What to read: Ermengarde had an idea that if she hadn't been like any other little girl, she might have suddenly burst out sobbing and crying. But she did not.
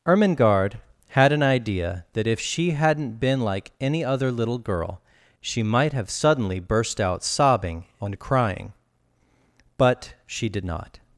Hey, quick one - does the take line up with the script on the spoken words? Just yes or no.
yes